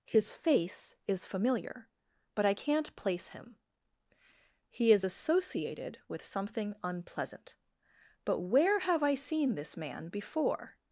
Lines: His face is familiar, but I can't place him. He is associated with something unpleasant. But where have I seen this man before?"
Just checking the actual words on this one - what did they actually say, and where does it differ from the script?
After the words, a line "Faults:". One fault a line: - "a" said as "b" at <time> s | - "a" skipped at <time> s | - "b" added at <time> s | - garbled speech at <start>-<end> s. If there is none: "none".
His face is familiar, but I can't place him. He is associated with something unpleasant. But where have I seen this man before?"
Faults:
none